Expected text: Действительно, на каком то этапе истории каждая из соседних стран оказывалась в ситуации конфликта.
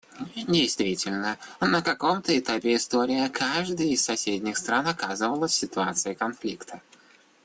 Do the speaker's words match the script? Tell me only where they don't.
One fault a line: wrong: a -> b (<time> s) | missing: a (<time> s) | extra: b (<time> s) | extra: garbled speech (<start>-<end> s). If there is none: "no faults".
no faults